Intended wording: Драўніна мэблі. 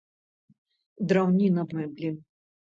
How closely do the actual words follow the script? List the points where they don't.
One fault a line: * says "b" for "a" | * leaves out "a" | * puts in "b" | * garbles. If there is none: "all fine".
all fine